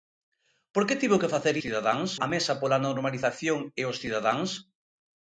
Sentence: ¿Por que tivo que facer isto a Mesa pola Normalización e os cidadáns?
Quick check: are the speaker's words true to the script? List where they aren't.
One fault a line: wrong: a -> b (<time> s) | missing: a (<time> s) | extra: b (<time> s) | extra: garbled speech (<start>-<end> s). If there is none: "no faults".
wrong: isto -> cidadáns (1.6 s)